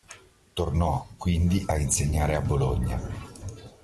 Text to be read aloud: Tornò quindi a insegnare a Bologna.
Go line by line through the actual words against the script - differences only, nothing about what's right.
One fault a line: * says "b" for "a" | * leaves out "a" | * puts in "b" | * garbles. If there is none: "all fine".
all fine